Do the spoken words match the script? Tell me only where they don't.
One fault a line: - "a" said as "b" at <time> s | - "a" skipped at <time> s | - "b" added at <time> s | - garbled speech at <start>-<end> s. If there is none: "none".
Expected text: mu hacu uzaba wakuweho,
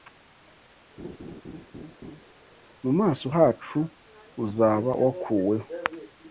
- "maso" added at 3.0 s